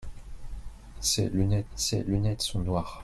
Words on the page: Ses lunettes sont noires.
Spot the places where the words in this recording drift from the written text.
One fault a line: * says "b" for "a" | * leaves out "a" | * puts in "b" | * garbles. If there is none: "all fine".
* puts in "ses lunettes"